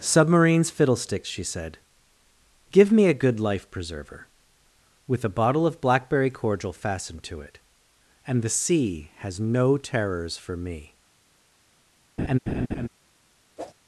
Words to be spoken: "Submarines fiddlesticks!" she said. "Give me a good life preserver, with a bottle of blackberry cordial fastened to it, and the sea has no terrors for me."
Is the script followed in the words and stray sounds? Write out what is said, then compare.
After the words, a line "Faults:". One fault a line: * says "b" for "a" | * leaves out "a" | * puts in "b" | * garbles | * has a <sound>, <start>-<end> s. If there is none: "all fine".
"Submarines fiddlesticks!" she said. "Give me a good life preserver, with a bottle of blackberry cordial fastened to it, and the sea has no terrors for me."
Faults:
* has a laugh, 12.2-12.9 s
* has a whoosh, 13.6-13.7 s